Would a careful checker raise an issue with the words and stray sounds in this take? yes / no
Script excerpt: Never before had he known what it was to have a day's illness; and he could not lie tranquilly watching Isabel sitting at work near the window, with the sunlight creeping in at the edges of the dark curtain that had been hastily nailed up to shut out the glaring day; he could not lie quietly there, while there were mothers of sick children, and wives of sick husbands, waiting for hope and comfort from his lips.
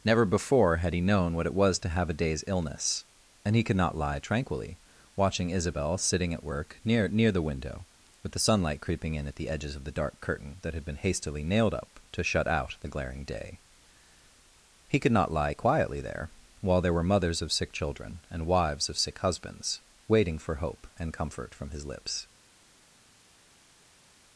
yes